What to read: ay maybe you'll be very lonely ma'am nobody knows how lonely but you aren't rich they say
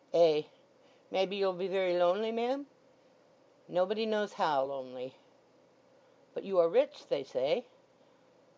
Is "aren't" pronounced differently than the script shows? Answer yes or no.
yes